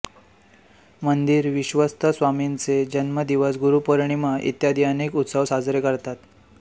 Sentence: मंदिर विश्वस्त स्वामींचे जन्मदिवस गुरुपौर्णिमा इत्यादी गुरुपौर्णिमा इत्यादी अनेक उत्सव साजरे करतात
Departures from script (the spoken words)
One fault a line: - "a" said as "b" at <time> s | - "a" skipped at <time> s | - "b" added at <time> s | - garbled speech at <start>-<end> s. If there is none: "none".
- "गुरुपौर्णिमा इत्यादी" skipped at 4.8 s